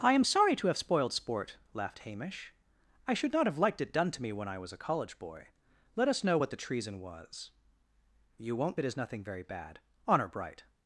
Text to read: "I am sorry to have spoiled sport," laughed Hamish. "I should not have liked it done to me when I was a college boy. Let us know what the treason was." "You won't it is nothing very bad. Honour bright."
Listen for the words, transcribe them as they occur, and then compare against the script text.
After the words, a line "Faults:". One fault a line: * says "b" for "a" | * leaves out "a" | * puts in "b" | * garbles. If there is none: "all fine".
"I am sorry to have spoiled sport," laughed Hamish. "I should not have liked it done to me when I was a college boy. Let us know what the treason was." "You won't it is nothing very bad. Honour bright."
Faults:
all fine